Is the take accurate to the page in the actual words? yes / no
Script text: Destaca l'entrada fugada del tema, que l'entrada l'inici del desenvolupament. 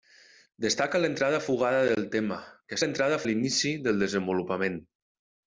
yes